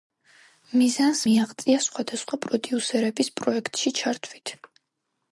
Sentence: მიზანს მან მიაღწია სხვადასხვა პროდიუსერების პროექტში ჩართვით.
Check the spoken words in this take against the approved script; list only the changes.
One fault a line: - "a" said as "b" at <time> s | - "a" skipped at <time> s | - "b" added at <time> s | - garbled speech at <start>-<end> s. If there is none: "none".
- "მან" skipped at 1.2 s